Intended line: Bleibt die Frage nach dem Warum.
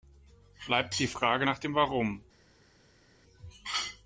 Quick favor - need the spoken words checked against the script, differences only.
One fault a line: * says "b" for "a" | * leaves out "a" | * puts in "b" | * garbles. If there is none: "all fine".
all fine